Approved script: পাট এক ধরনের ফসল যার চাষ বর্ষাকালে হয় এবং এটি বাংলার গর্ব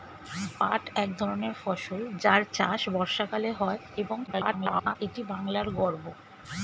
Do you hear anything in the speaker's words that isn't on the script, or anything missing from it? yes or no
yes